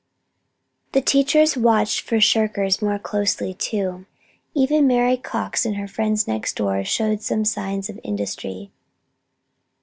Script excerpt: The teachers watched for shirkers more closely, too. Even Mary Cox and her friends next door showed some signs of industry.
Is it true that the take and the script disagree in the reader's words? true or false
false